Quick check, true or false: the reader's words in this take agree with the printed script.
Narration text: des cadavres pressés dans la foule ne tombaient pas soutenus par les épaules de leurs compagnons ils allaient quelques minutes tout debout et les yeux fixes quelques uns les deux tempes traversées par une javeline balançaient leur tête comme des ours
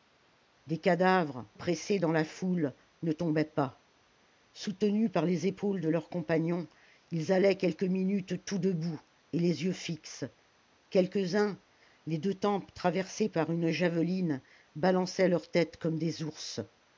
true